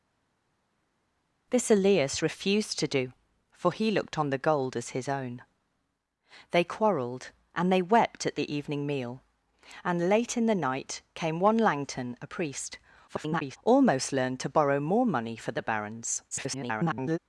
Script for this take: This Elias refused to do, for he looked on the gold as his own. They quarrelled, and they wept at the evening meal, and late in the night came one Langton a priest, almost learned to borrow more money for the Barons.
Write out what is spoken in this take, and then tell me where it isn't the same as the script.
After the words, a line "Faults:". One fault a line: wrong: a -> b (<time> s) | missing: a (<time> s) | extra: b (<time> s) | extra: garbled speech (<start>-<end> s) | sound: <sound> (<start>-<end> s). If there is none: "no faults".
This Elias refused to do, for he looked on the gold as his own. They quarrelled, and they wept at the evening meal, and late in the night came one Langton a priest, [garbled] almost learned to borrow more money for the Barons. [garbled]
Faults:
extra: garbled speech (13.1-13.6 s)
extra: garbled speech (16.3-17.2 s)